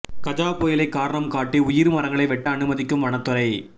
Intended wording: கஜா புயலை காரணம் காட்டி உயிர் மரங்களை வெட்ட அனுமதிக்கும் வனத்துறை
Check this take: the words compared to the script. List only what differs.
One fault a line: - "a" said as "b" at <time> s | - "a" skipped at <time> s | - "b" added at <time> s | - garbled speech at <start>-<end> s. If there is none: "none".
none